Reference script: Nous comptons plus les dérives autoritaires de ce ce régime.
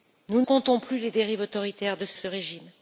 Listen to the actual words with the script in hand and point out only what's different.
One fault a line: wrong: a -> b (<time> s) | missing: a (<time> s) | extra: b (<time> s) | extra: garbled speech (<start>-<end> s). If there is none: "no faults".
no faults